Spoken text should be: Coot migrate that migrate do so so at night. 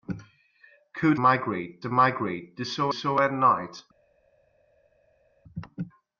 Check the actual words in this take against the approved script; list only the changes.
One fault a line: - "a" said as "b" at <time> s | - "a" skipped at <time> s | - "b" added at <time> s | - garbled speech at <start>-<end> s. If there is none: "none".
none